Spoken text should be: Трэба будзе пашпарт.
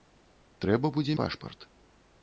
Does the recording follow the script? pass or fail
pass